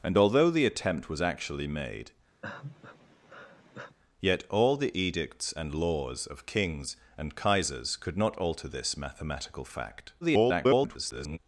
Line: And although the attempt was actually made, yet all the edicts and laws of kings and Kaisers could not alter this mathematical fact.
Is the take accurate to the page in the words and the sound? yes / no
no